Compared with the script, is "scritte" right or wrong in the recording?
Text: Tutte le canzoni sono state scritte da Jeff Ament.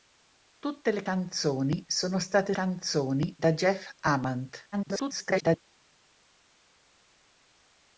wrong